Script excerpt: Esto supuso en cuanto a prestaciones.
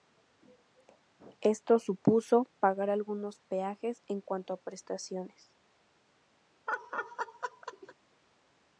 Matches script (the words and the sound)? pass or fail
fail